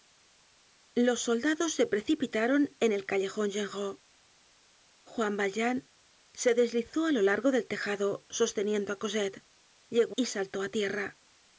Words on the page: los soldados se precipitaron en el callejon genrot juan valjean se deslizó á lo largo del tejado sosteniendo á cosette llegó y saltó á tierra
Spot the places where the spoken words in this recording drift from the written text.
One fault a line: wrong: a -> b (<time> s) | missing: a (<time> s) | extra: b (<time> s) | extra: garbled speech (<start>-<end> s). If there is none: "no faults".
no faults